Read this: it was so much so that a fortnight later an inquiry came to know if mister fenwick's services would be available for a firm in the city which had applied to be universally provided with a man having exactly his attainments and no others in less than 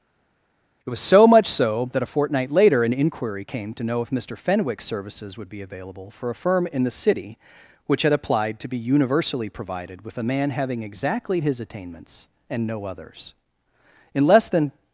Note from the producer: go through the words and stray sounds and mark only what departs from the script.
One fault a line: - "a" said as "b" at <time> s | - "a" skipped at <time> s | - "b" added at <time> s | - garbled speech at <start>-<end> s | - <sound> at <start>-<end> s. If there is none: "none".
none